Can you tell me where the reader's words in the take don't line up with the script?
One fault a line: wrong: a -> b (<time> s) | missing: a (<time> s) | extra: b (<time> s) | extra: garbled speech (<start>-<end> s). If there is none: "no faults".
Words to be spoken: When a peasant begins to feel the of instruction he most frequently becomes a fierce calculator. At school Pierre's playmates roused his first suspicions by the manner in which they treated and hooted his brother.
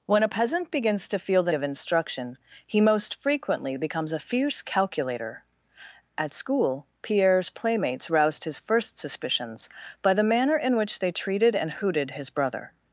no faults